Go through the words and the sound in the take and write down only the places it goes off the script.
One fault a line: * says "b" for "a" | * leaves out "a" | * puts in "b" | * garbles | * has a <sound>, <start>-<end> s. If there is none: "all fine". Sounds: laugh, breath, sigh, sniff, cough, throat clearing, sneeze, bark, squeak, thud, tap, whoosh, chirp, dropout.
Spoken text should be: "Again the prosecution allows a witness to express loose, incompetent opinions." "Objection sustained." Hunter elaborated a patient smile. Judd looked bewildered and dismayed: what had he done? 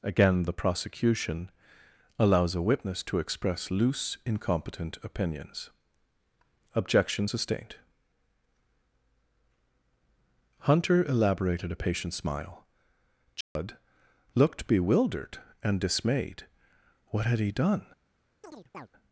* has a dropout, 13.4-13.6 s
* has a chirp, 18.4-18.9 s